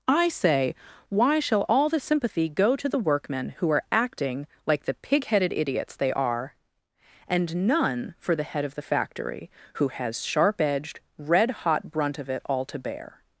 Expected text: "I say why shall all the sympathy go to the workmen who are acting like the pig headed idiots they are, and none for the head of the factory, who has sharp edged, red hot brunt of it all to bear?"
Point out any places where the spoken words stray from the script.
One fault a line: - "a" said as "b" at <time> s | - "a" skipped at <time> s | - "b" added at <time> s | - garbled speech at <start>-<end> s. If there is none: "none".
none